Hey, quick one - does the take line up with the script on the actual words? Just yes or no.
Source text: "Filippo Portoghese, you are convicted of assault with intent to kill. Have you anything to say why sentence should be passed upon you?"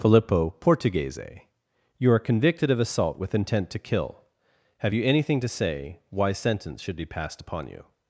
yes